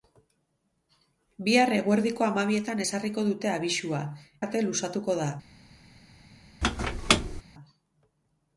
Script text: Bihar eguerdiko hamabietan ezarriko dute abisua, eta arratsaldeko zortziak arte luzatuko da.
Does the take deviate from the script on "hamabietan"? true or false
false